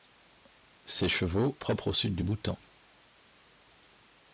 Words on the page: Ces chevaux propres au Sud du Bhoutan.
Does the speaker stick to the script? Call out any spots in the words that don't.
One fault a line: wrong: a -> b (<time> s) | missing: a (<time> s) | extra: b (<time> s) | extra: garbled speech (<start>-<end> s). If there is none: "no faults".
no faults